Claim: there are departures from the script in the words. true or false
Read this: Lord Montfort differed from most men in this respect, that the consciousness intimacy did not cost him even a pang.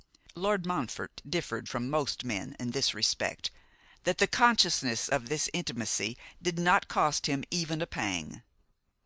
true